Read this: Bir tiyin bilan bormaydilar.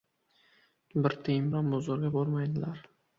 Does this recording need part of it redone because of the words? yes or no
yes